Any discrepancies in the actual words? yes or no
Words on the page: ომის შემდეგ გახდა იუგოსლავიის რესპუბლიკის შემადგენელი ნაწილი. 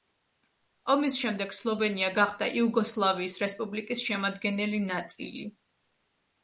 yes